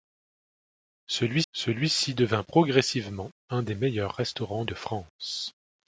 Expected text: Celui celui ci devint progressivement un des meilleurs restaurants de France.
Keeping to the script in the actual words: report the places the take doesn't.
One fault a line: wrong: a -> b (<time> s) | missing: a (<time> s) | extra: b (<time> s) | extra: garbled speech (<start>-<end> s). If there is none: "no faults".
no faults